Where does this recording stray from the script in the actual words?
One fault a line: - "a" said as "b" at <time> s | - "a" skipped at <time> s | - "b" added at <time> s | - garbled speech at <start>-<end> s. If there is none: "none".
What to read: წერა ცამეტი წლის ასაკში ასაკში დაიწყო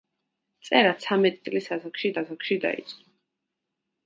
none